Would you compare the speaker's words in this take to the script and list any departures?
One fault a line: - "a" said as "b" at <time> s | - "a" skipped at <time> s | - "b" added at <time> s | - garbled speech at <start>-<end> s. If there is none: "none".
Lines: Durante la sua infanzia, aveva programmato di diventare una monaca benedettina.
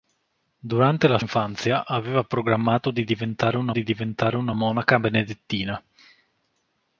- "sua" skipped at 1.2 s
- "di diventare una" added at 3.7 s